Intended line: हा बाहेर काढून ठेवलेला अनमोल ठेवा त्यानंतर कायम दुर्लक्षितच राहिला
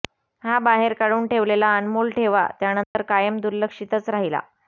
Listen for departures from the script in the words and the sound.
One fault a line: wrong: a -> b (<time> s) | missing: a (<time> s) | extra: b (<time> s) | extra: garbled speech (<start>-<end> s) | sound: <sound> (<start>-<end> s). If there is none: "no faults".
sound: dropout (2.8-3.0 s)